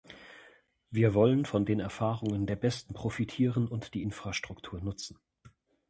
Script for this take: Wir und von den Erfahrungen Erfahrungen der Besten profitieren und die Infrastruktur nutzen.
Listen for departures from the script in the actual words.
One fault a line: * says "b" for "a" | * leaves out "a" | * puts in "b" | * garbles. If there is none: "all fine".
* says "wollen" for "und"
* leaves out "Erfahrungen"